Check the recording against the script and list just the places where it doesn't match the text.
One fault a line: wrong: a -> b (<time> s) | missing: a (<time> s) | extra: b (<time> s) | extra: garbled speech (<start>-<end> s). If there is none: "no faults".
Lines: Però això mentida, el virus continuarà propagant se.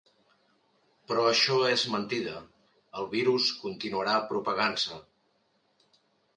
extra: és (1.7 s)